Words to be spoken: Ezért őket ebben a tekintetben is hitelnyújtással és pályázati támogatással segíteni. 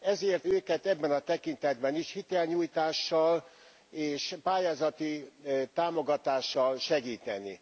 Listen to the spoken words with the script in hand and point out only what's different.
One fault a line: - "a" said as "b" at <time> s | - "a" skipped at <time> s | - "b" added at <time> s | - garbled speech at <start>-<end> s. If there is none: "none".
none